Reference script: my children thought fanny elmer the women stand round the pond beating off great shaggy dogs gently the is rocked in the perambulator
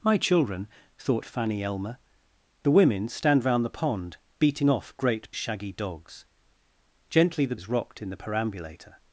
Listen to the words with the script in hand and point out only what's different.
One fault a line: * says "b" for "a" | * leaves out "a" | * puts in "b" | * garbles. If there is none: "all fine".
all fine